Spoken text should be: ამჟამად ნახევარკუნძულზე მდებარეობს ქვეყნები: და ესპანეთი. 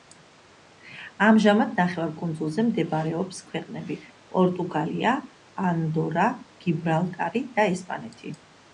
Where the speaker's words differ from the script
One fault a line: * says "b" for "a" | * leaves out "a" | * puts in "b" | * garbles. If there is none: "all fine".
* puts in "პორტუგალია ანდორა გიბრალტარი"